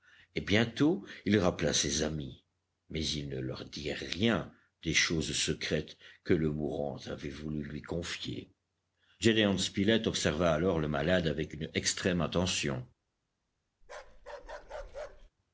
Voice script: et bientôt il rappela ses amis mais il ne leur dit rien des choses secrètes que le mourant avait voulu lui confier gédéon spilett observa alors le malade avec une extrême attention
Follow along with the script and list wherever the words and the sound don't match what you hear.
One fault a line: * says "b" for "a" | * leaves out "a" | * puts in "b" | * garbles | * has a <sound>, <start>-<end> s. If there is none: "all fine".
* has a bark, 13.8-15.3 s